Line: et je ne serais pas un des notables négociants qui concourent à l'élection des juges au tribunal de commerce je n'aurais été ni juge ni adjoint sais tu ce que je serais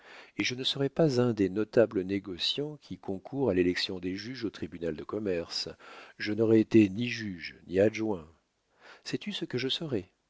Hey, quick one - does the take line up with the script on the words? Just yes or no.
yes